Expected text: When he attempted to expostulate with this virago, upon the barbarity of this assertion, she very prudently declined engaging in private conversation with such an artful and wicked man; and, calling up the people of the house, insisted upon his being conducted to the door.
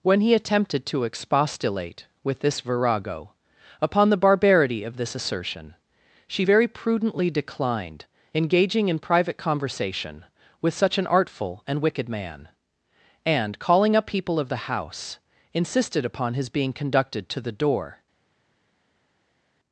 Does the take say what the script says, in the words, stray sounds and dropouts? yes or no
no